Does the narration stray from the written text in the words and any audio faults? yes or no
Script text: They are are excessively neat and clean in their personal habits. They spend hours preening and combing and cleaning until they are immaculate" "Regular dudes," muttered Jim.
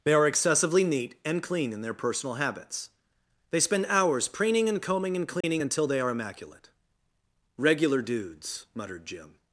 yes